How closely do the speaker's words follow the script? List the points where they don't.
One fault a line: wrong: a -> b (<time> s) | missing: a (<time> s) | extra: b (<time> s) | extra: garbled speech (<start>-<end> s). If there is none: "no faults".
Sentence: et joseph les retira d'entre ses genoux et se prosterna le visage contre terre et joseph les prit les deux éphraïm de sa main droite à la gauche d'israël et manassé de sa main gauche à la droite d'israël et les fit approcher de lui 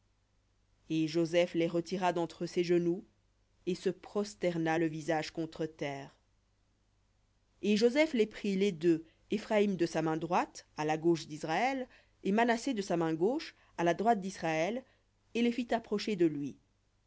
no faults